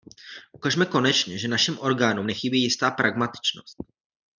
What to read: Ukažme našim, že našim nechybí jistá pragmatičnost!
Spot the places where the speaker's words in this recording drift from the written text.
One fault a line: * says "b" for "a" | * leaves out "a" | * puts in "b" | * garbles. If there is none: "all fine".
* says "konečně" for "našim"
* puts in "orgánům"